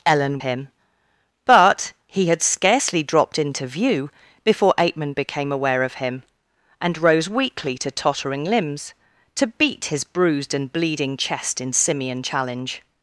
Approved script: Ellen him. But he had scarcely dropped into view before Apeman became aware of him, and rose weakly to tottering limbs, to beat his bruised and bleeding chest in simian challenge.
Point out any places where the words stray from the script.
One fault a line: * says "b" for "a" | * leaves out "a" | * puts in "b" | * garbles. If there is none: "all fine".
all fine